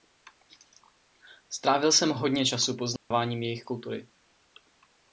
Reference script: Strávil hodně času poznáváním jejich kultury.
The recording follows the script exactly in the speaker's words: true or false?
false